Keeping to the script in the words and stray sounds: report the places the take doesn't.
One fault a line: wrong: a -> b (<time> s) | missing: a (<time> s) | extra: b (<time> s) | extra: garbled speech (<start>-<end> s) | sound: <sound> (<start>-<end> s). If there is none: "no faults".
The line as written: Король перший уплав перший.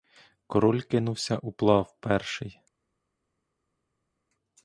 wrong: перший -> кинувся (0.8 s)